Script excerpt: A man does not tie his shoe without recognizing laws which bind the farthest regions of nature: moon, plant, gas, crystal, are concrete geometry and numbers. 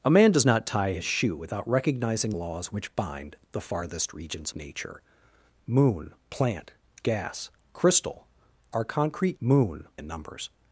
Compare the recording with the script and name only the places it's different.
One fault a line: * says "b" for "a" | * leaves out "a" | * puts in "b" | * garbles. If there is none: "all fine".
* leaves out "of"
* says "moon" for "geometry"